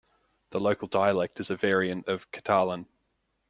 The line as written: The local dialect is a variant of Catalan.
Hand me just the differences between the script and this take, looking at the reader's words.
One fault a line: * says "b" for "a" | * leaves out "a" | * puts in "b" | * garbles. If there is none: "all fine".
all fine